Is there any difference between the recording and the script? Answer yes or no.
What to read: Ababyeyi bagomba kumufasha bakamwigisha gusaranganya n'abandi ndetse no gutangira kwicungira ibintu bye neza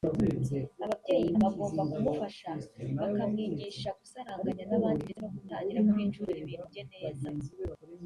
no